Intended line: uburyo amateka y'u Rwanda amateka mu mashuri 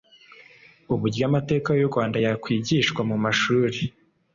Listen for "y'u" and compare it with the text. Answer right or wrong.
right